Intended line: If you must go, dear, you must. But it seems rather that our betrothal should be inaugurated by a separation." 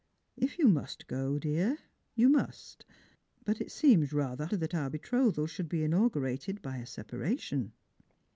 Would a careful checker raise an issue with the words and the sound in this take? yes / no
no